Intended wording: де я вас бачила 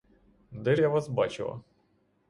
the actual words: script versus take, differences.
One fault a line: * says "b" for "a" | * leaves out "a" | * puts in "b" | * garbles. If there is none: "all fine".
all fine